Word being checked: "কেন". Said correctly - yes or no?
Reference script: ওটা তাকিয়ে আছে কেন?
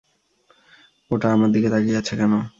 yes